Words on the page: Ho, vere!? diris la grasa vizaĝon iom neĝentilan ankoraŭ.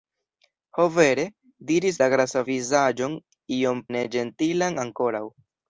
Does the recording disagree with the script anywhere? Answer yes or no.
no